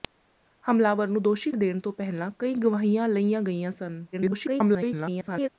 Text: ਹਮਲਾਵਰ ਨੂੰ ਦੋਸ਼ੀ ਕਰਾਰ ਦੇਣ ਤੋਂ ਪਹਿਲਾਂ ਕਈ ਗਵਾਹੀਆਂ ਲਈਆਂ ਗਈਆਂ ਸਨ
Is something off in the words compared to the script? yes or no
yes